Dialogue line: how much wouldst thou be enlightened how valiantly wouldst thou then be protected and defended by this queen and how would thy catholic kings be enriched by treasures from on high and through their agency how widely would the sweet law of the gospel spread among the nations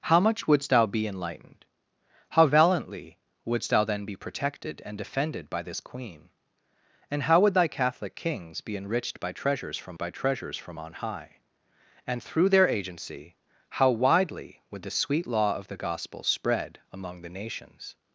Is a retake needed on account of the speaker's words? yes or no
yes